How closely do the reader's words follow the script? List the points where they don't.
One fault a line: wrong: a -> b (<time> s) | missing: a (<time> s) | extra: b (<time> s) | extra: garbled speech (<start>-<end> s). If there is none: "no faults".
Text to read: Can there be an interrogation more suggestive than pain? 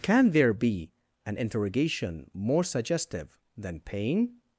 no faults